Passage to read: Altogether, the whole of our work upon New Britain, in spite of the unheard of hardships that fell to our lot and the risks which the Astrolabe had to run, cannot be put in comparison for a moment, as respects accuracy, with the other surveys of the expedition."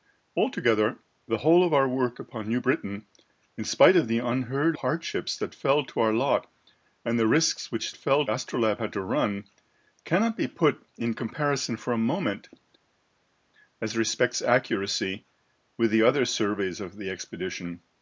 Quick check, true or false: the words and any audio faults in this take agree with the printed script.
false